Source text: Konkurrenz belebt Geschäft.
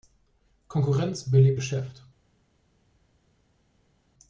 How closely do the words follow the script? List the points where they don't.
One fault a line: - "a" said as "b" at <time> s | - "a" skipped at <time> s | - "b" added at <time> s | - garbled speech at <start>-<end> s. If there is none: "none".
none